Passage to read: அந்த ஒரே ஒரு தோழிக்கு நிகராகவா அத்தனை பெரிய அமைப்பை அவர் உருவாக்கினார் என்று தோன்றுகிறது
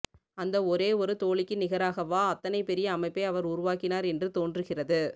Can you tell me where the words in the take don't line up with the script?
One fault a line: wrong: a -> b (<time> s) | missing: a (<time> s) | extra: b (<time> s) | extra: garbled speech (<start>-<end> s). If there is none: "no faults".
no faults